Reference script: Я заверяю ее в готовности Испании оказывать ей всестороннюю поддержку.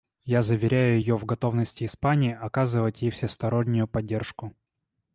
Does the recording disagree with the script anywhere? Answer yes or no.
no